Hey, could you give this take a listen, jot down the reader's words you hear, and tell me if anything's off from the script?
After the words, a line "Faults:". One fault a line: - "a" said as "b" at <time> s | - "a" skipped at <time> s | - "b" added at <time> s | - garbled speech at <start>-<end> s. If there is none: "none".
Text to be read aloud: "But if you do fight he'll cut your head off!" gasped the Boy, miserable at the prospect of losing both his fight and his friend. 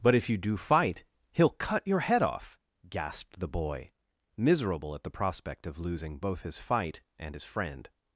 "But if you do fight he'll cut your head off!" gasped the Boy, miserable at the prospect of losing both his fight and his friend.
Faults:
none